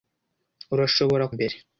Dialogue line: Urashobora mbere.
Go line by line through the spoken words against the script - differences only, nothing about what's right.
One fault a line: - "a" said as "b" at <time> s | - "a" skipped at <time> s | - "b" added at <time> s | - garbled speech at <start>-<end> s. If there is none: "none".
none